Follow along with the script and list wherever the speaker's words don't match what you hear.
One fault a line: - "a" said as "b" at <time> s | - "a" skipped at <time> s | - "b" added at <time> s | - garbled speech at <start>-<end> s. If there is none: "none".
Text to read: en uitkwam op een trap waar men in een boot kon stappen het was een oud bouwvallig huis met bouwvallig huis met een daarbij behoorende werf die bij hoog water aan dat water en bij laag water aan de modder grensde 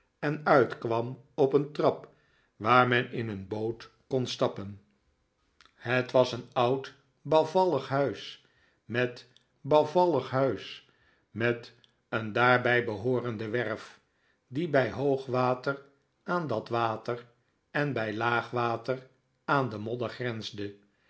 none